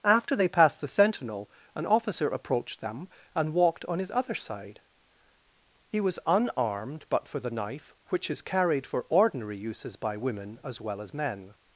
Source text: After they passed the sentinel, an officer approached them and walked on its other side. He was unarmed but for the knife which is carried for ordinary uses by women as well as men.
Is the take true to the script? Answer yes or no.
no